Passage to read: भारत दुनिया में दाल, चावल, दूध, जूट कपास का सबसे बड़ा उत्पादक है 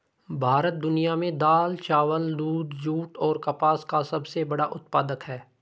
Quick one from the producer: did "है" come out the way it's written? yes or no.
yes